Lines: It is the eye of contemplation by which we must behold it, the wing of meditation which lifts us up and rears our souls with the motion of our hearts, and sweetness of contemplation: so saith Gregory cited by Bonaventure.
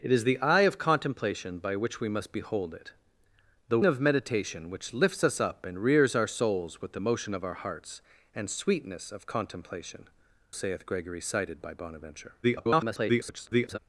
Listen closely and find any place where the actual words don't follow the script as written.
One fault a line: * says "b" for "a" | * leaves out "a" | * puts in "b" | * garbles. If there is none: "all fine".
* leaves out "wing"
* leaves out "so"
* garbles